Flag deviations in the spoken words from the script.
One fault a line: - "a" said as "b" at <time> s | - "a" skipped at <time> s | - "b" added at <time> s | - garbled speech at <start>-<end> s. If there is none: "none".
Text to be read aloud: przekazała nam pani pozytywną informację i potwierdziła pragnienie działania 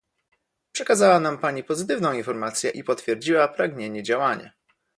none